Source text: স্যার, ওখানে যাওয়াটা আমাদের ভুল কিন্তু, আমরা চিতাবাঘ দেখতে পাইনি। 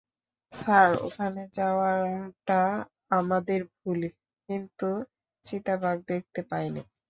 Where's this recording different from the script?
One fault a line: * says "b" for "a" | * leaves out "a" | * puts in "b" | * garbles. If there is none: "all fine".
* leaves out "আমরা"